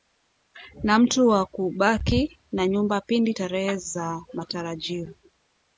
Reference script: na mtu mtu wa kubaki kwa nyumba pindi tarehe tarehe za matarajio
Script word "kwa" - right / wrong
wrong